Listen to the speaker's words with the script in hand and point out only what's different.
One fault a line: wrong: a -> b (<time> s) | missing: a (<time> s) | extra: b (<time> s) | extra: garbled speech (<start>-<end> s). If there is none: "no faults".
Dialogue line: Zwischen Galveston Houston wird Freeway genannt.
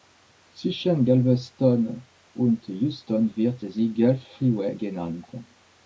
extra: und (2.3 s)
extra: sie Gulf (3.6 s)